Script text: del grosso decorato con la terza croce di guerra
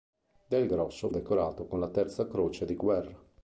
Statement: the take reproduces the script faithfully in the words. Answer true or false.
true